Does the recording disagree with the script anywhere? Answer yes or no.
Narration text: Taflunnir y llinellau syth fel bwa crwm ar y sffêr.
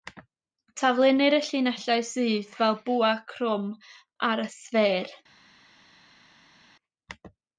no